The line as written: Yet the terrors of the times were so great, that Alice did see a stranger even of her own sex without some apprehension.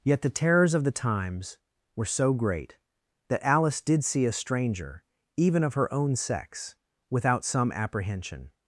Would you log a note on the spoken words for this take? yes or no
no